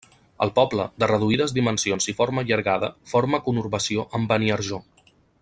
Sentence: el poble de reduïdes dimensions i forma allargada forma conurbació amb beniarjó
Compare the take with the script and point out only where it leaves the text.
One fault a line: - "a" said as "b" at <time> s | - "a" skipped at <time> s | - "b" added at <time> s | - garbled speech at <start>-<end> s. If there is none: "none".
none